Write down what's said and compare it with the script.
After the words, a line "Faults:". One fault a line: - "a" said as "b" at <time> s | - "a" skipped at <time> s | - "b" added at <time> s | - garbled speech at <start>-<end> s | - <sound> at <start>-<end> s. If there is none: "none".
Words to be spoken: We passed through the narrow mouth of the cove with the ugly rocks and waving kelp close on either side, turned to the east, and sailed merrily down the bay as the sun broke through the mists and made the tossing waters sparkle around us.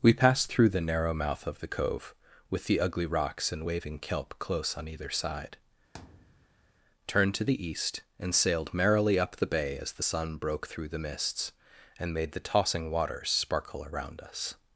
We passed through the narrow mouth of the cove with the ugly rocks and waving kelp close on either side, turned to the east, and sailed merrily up the bay as the sun broke through the mists and made the tossing waters sparkle around us.
Faults:
- thud at 5.9-6.7 s
- "down" said as "up" at 9.2 s